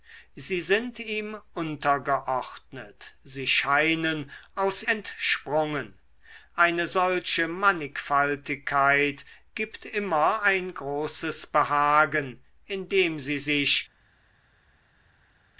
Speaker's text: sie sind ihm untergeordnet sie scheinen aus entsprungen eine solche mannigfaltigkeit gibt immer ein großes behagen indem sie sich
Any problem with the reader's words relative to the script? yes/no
no